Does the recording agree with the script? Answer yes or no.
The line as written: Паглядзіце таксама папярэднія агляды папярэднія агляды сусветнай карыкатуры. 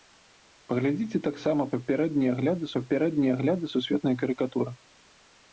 yes